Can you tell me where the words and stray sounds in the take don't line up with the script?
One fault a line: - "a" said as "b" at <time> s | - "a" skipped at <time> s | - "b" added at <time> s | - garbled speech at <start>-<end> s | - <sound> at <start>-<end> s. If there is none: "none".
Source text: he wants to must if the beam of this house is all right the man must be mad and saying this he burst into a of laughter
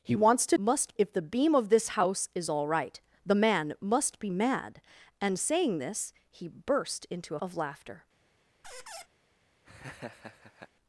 - squeak at 8.6-9.1 s
- laugh at 9.6-10.7 s